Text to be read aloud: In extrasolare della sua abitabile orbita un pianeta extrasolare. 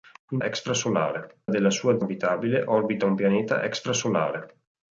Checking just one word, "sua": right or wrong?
right